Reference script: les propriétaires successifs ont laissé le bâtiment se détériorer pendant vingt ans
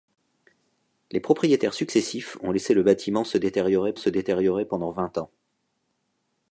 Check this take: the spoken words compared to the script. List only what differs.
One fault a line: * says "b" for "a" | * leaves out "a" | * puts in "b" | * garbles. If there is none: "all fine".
* puts in "se détériorer"